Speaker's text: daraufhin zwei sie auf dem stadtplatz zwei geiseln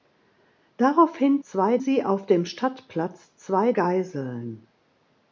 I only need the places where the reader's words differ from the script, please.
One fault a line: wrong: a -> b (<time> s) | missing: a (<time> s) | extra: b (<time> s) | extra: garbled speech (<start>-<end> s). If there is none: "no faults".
no faults